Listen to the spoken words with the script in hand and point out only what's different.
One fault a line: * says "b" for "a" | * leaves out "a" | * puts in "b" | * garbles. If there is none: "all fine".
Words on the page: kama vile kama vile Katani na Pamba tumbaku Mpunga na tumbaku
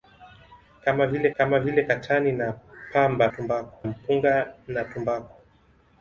all fine